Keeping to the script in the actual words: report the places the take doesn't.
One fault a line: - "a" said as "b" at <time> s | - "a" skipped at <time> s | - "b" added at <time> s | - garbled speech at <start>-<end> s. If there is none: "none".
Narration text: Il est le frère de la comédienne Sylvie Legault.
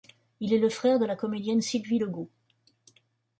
none